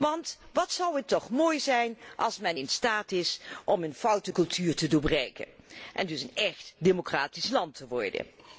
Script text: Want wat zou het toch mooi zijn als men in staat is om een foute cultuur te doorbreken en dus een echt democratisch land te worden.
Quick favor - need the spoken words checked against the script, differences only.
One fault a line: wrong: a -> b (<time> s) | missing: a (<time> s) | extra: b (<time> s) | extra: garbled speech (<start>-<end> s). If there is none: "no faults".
no faults